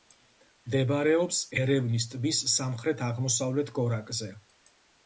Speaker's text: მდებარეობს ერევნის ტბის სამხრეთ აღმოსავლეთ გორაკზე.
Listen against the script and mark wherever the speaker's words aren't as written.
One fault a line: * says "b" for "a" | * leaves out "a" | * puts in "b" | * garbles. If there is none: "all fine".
all fine